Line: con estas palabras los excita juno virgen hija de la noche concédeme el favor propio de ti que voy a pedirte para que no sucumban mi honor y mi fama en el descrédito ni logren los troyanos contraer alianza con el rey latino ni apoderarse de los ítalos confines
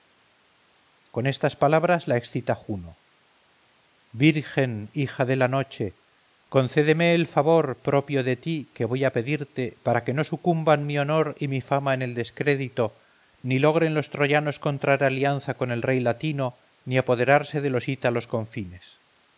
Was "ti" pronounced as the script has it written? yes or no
yes